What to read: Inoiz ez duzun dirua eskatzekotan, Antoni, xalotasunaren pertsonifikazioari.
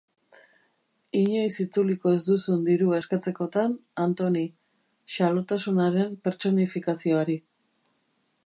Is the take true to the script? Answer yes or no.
no